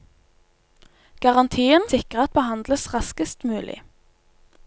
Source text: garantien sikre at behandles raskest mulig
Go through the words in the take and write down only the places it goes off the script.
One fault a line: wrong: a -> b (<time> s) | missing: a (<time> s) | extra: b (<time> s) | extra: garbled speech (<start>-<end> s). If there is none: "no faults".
no faults